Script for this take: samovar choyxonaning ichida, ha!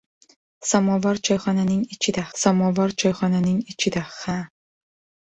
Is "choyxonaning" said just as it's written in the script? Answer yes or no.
yes